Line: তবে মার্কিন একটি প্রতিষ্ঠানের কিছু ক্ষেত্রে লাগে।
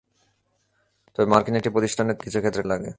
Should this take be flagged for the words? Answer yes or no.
no